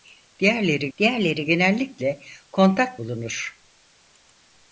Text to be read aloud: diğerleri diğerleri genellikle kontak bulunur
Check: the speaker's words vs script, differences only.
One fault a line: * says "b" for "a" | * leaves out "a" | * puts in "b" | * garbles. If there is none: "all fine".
all fine